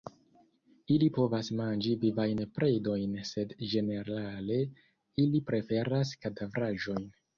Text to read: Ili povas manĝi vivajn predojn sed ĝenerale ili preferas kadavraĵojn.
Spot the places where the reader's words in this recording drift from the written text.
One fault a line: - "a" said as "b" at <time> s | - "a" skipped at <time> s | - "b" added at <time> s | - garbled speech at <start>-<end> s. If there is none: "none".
none